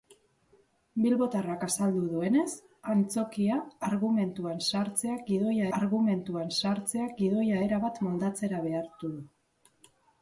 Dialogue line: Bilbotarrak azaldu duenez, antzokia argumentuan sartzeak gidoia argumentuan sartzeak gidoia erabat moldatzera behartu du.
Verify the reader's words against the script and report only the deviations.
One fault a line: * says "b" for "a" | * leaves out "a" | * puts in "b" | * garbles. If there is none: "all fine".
all fine